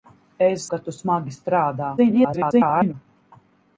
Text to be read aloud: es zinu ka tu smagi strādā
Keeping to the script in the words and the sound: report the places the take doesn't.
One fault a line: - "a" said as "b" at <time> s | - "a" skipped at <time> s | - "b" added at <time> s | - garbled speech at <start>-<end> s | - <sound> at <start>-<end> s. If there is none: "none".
- "zinu" skipped at 0.6 s
- garbled speech at 2.0-2.9 s